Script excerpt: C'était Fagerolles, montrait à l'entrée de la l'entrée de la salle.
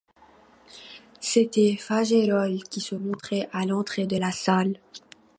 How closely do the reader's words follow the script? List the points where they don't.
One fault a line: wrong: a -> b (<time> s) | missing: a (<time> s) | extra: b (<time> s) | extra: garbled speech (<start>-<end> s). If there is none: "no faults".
extra: qui se (2.6 s)
missing: l'entrée de la (4.3 s)